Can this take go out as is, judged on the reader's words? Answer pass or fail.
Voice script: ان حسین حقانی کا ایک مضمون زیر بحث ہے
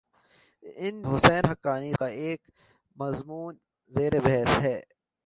pass